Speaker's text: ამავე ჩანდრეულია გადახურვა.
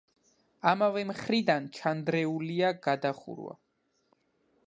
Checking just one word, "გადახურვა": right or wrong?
right